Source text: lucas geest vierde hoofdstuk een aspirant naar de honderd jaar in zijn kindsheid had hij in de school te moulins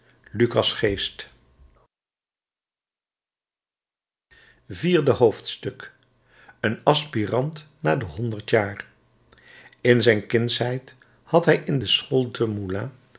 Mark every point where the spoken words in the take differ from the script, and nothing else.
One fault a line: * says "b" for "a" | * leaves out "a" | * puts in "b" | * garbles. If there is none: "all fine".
all fine